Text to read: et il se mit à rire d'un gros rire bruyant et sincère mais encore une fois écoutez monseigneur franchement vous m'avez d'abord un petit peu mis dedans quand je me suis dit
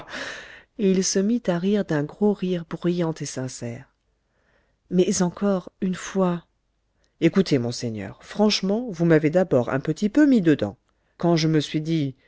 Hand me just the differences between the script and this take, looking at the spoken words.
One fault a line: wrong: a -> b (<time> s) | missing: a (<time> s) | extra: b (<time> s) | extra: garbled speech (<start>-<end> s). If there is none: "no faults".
no faults